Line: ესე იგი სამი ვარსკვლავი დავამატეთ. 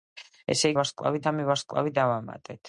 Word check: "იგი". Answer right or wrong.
wrong